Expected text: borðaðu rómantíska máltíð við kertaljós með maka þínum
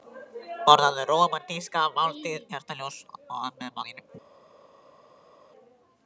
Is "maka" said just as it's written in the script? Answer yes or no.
no